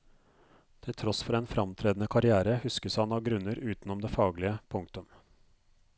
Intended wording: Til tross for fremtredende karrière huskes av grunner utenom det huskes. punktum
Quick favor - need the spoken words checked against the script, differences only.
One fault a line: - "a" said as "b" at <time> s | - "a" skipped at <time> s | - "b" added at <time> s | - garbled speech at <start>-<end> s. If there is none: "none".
- "en" added at 1.4 s
- "han" added at 3.0 s
- "huskes" said as "faglige" at 4.1 s